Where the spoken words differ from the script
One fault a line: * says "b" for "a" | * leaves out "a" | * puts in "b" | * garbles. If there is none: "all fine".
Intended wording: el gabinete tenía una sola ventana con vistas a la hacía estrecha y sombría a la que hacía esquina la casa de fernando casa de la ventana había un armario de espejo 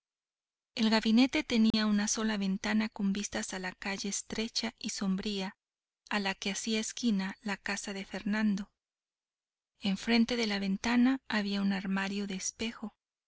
* says "calle" for "hacía"
* says "enfrente" for "casa"